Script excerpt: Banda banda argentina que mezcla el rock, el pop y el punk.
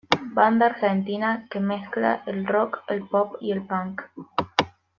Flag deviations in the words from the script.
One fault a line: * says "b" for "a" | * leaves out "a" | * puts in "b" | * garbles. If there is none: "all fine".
* leaves out "banda"